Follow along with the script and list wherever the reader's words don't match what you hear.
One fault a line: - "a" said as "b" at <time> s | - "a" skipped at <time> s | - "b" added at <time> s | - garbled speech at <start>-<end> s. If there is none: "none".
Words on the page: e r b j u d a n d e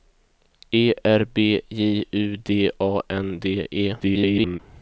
- garbled speech at 4.0-4.6 s